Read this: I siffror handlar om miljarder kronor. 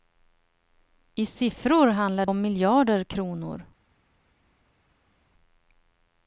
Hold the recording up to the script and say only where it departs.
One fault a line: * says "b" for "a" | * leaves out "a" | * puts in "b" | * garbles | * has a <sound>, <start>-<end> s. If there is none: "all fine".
all fine